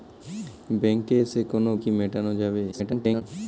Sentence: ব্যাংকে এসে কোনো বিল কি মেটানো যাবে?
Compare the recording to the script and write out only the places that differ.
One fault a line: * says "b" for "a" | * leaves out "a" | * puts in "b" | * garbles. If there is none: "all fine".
* leaves out "বিল"
* garbles